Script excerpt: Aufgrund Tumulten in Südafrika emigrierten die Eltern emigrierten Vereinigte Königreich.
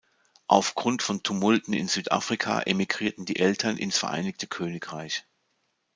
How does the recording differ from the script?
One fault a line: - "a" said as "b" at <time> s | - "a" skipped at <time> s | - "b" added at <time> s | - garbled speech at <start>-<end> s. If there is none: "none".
- "von" added at 1.0 s
- "emigrierten" said as "ins" at 3.8 s